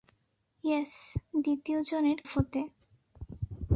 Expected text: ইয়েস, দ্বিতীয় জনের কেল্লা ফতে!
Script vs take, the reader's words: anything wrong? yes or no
yes